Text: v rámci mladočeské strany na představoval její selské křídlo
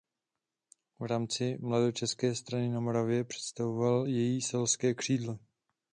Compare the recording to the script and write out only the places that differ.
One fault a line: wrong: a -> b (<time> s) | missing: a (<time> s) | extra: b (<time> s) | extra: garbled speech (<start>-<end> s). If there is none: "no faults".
extra: moravě (2.8 s)